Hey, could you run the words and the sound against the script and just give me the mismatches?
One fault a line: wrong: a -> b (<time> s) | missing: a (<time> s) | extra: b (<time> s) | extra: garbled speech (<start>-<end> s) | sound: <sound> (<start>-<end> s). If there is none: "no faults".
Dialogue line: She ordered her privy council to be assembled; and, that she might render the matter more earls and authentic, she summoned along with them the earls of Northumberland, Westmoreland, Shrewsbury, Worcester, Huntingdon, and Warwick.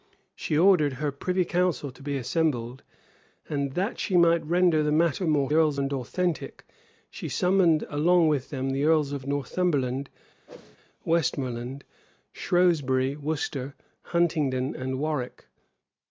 sound: whoosh (10.5-10.8 s)